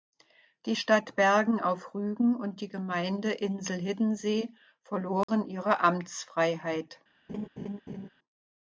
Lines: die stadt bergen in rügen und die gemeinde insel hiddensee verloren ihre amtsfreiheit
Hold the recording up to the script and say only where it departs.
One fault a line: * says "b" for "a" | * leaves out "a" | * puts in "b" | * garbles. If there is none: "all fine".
* says "auf" for "in"